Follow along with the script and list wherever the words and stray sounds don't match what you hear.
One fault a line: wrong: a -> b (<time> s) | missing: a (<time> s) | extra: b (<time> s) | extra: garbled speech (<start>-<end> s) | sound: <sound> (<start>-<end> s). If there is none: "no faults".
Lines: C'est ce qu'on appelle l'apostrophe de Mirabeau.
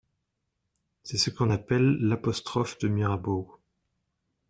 no faults